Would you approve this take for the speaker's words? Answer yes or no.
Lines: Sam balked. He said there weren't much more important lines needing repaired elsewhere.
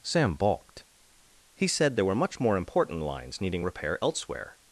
no